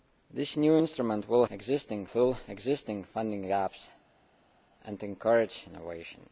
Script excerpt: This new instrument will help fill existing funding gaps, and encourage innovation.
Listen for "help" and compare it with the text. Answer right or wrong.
wrong